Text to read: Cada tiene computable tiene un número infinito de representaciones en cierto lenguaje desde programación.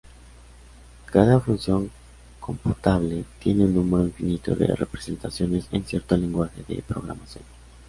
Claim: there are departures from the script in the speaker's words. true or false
true